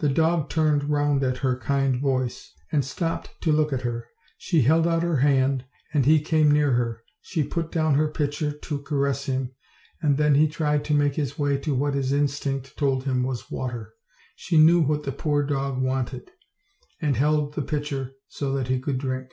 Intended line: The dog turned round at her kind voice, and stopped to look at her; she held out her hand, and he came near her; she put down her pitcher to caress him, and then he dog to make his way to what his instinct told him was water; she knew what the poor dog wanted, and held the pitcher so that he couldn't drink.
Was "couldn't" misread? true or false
true